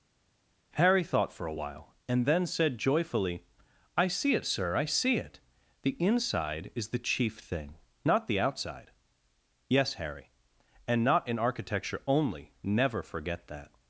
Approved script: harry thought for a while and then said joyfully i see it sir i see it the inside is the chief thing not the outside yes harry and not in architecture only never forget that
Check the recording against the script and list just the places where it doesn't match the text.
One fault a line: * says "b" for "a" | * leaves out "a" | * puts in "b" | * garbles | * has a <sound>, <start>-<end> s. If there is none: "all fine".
all fine